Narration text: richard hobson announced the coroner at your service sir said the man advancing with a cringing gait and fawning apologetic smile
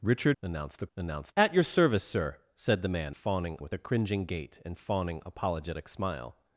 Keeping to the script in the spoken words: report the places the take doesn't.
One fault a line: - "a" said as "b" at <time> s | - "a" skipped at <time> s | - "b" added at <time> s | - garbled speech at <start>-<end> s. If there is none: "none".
- "hobson" skipped at 0.4 s
- "coroner" said as "announced" at 1.0 s
- "advancing" said as "fawning" at 3.1 s